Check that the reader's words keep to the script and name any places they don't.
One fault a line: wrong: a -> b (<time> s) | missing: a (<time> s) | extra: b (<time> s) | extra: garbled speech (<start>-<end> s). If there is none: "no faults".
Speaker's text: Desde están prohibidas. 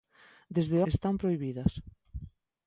no faults